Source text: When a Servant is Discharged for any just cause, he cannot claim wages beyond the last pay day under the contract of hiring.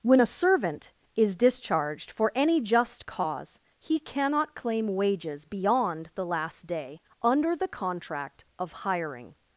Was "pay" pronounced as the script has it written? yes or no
no